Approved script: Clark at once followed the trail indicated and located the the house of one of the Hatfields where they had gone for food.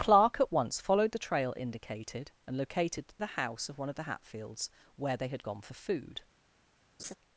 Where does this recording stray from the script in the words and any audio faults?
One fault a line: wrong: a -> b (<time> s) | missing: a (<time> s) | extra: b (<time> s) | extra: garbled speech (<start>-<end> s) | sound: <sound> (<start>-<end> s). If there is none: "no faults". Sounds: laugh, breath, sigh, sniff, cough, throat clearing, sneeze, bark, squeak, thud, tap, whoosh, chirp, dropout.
sound: laugh (7.0-7.2 s)